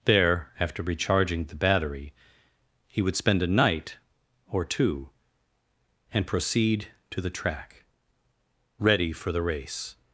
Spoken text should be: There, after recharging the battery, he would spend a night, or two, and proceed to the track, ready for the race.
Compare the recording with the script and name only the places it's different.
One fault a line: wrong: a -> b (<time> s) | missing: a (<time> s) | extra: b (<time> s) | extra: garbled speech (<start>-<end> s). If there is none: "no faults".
no faults